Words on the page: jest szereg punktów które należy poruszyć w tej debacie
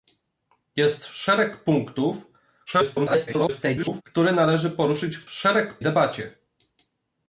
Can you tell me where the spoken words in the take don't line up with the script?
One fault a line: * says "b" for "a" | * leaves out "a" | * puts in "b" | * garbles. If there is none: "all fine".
* garbles
* says "szereg" for "tej"